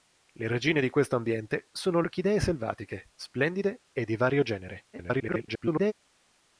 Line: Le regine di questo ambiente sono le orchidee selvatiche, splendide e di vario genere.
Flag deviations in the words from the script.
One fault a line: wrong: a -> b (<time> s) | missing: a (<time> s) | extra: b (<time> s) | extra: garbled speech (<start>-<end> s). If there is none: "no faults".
missing: le (2.0 s)
extra: garbled speech (4.9-5.9 s)